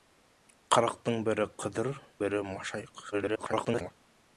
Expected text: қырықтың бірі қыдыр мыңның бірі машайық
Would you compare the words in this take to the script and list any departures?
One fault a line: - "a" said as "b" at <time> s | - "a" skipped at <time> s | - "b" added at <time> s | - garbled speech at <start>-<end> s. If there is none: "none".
- "мыңның" skipped at 1.9 s
- garbled speech at 3.1-3.9 s